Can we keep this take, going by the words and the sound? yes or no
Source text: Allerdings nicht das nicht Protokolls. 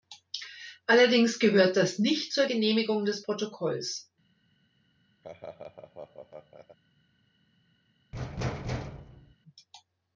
no